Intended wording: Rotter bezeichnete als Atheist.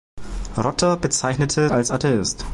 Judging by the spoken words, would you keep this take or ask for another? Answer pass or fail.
pass